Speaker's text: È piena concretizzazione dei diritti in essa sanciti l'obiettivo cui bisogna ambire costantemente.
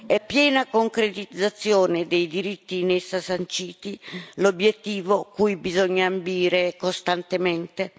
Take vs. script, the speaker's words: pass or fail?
pass